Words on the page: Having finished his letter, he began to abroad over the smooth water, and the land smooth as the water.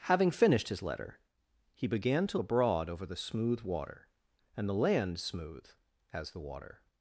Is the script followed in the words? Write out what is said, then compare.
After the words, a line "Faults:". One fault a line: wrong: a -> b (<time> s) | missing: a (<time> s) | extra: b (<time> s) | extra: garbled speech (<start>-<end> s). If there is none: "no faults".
Having finished his letter, he began to abroad over the smooth water, and the land smooth as the water.
Faults:
no faults